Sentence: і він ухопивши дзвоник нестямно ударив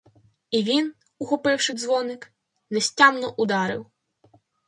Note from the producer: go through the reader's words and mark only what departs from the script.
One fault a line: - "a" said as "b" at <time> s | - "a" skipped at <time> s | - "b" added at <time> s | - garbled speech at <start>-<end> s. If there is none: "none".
none